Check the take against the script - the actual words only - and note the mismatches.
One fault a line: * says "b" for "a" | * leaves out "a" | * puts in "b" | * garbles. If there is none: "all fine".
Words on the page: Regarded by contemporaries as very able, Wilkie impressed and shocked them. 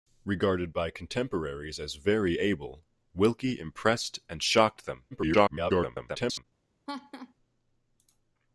* garbles